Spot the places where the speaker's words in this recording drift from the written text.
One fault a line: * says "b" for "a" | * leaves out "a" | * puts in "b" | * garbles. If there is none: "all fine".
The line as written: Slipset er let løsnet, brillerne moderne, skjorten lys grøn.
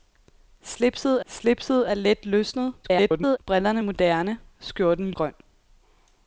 * puts in "slipset"
* garbles
* leaves out "lys"